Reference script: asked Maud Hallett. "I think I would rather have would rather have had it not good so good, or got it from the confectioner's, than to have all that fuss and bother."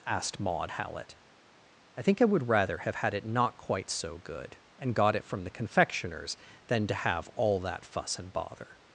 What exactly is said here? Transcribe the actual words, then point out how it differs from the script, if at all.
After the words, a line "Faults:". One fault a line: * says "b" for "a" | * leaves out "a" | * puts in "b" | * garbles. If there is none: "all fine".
asked Maud Hallett. "I think I would rather have had it not quite so good, and got it from the confectioner's, than to have all that fuss and bother."
Faults:
* leaves out "would rather have"
* says "quite" for "good"
* says "and" for "or"